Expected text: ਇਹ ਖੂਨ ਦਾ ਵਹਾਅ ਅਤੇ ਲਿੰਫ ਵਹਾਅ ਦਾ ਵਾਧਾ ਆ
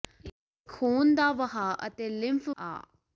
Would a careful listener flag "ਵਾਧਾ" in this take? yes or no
yes